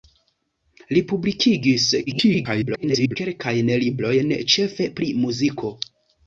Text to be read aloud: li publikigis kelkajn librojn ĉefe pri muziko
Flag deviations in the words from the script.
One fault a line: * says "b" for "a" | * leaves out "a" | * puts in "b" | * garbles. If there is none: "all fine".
* garbles